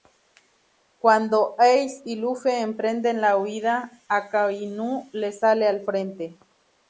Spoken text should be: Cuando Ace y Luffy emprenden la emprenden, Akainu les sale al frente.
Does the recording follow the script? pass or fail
fail